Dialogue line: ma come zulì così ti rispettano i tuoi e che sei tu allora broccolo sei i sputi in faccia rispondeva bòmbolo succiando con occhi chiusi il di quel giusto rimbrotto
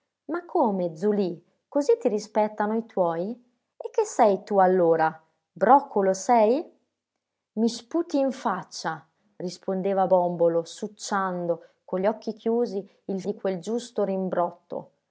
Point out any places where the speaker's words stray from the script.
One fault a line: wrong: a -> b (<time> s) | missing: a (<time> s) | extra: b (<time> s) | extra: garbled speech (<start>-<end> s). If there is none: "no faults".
no faults